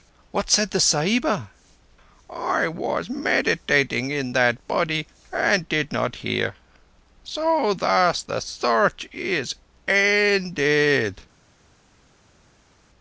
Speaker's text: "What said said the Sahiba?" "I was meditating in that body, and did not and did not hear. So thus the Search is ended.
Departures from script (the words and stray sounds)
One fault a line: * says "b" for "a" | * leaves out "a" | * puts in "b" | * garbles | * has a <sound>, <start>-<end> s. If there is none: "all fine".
* leaves out "said"
* leaves out "and did not"